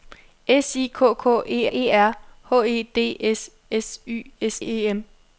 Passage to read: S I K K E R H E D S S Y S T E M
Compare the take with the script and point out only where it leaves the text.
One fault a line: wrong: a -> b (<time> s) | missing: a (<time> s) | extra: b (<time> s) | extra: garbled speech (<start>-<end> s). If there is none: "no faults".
extra: E (1.7 s)
missing: T (4.6 s)